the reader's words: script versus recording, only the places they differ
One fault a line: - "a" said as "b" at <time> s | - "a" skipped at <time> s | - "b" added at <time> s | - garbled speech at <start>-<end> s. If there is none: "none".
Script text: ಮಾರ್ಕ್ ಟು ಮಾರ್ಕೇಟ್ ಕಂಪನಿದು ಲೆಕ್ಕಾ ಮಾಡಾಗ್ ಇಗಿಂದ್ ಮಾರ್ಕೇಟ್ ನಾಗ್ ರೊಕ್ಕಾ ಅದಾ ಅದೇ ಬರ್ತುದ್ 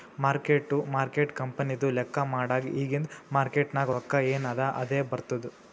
- "ಎನ್" added at 4.3 s